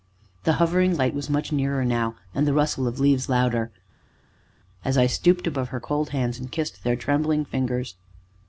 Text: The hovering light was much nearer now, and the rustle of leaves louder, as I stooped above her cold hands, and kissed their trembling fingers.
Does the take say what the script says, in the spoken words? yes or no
yes